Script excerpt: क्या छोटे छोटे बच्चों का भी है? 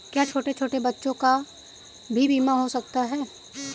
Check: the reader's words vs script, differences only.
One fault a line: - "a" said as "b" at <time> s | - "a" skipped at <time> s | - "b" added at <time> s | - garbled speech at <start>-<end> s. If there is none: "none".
- "बीमा हो सकता" added at 2.3 s